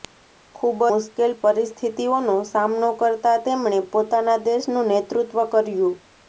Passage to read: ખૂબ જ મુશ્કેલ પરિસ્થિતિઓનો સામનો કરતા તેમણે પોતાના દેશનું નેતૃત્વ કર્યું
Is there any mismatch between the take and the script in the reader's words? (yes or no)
yes